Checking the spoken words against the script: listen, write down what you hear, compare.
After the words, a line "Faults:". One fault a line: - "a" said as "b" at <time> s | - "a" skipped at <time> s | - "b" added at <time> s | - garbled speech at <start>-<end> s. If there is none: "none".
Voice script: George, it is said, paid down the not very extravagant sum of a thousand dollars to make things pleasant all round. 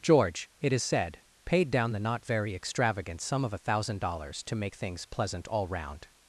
George, it is said, paid down the not very extravagant sum of a thousand dollars to make things pleasant all round.
Faults:
none